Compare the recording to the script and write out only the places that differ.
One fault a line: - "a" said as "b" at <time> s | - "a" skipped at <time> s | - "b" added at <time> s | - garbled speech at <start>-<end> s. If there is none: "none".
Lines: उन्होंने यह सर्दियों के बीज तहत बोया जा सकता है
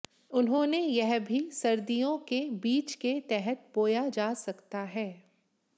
- "भी" added at 1.2 s
- "के" added at 2.9 s